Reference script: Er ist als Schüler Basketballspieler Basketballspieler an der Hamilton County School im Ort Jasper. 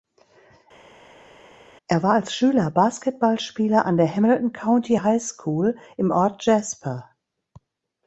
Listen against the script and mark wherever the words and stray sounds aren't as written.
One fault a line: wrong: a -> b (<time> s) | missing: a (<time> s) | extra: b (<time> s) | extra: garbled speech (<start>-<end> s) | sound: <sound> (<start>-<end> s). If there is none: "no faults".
wrong: ist -> war (2.0 s)
missing: Basketballspieler (3.8 s)
extra: High (4.9 s)